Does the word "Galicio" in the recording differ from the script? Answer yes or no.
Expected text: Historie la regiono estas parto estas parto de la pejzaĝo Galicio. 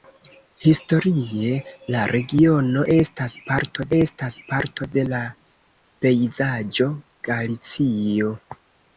no